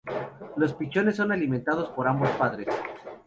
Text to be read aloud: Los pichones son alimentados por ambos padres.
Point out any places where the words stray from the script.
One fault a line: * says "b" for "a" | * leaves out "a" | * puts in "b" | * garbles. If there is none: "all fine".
all fine